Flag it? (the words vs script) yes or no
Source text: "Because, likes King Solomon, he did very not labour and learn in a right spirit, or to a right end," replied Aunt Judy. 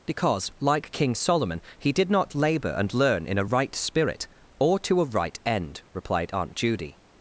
yes